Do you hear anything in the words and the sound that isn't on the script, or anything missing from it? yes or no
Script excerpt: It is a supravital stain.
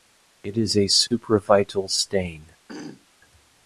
yes